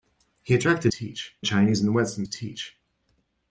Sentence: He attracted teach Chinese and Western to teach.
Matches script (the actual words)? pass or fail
pass